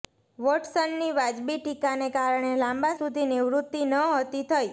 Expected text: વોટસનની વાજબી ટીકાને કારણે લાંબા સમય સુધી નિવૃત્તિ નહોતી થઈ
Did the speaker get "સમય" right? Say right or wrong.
wrong